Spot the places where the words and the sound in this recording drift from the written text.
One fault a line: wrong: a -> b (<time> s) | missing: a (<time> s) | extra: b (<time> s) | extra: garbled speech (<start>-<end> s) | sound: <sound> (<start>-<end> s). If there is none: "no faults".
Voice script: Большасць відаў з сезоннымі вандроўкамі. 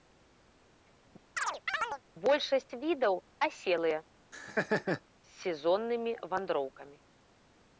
sound: chirp (1.4-2.0 s)
extra: аселыя (3.5 s)
sound: laugh (4.3-5.0 s)